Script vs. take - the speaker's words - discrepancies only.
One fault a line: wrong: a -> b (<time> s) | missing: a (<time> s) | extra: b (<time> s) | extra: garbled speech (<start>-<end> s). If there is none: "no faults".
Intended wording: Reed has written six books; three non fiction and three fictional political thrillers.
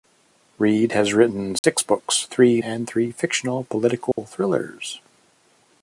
missing: non fiction (2.6 s)